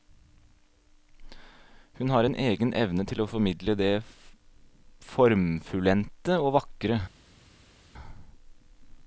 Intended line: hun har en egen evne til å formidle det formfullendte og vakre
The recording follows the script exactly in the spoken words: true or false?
true